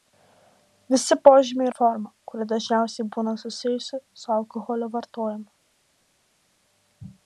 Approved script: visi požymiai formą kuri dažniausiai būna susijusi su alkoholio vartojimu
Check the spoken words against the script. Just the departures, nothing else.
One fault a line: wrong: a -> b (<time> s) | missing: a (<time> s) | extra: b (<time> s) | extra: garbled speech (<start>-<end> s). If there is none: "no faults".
no faults